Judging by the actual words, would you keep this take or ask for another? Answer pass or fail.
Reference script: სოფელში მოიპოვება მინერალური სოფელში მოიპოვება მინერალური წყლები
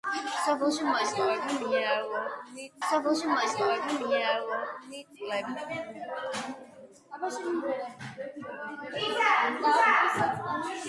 pass